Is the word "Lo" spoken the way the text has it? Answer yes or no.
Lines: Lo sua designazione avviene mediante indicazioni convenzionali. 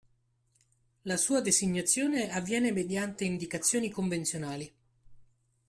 no